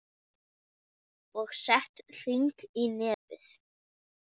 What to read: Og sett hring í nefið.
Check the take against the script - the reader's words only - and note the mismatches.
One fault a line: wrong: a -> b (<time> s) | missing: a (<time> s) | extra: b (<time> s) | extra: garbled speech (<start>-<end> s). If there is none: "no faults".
no faults